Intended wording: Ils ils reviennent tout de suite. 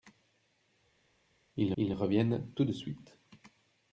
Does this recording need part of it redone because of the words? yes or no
no